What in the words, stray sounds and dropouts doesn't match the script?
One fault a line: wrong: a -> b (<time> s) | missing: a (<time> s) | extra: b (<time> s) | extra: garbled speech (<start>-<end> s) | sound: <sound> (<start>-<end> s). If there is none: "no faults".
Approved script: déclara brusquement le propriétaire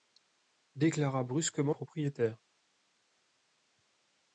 missing: le (1.8 s)